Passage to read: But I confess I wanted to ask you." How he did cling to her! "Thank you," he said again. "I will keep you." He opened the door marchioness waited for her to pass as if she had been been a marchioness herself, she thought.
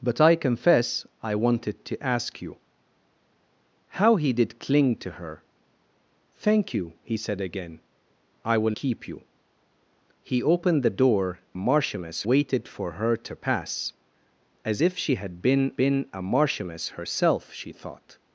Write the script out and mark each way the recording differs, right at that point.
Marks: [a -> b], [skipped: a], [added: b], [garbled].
But I confess I wanted to ask you." How he did cling to her! "Thank you," he said again. "I will keep you." He opened the door marchioness waited for her to pass as if she had been been a marchioness herself, she thought.